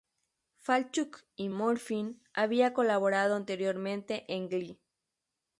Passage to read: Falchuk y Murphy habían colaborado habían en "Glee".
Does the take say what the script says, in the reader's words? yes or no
no